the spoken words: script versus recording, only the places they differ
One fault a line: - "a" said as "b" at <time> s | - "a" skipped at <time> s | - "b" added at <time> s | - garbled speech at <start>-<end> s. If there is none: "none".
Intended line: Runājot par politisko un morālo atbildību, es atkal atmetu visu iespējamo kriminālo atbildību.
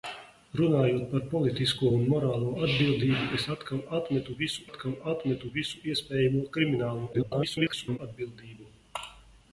- "atkal atmetu visu" added at 4.7 s
- garbled speech at 7.1-8.0 s